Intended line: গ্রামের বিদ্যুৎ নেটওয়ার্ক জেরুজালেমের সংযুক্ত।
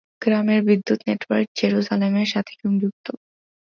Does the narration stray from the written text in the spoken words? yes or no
yes